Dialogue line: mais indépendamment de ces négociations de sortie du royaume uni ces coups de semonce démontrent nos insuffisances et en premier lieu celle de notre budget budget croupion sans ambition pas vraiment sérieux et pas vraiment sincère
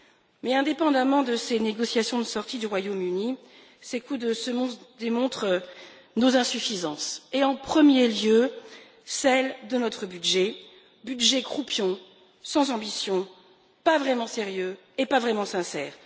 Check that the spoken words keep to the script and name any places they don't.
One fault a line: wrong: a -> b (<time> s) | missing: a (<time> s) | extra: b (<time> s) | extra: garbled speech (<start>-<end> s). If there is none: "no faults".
no faults